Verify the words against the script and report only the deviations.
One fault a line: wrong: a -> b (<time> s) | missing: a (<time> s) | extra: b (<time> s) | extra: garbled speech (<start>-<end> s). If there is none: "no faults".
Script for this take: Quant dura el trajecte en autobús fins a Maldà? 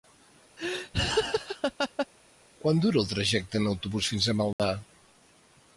no faults